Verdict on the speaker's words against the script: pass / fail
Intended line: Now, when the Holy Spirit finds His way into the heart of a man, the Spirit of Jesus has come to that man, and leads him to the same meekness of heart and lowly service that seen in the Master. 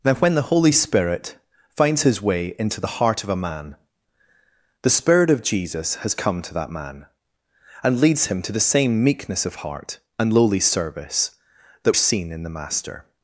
pass